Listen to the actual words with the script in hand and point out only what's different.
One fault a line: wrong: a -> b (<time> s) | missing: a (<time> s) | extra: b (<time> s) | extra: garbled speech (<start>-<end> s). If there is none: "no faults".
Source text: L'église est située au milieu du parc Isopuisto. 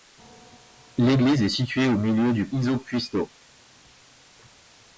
missing: parc (2.5 s)